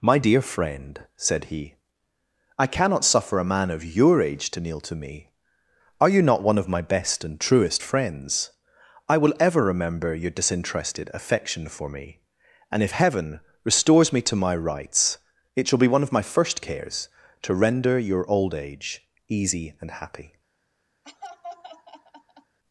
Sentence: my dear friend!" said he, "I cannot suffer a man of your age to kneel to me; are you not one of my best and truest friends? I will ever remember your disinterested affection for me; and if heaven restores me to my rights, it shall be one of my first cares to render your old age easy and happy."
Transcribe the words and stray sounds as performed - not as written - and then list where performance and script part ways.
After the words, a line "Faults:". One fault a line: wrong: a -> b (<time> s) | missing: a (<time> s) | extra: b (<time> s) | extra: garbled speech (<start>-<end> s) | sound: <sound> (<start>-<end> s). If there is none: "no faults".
my dear friend!" said he, "I cannot suffer a man of your age to kneel to me; are you not one of my best and truest friends? I will ever remember your disinterested affection for me; and if heaven restores me to my rights, it shall be one of my first cares to render your old age easy and happy."
Faults:
sound: laugh (21.0-22.6 s)